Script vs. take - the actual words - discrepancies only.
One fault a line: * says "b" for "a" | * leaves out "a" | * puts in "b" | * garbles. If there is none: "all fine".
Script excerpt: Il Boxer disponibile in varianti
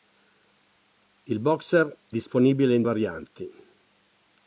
all fine